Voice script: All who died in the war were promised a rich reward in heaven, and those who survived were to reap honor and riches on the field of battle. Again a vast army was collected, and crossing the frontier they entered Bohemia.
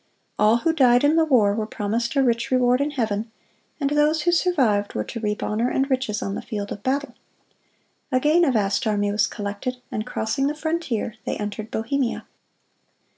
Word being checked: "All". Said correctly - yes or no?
yes